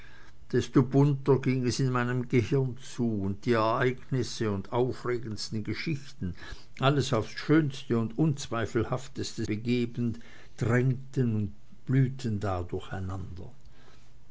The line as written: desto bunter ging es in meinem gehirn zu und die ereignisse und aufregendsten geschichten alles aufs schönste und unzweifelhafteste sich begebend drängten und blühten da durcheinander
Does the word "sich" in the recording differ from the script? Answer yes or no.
yes